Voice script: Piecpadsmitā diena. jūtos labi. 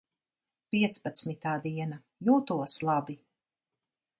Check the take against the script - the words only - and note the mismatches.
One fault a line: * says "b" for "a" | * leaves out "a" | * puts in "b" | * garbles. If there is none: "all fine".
all fine